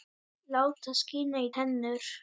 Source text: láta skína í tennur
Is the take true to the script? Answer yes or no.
yes